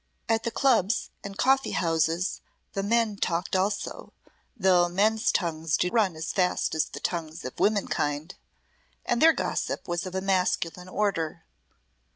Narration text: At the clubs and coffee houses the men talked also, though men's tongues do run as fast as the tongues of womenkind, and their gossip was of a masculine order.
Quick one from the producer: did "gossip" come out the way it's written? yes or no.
yes